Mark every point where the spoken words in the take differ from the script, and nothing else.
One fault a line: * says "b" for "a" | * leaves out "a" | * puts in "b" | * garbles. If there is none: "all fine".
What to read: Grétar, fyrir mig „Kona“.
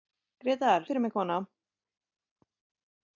all fine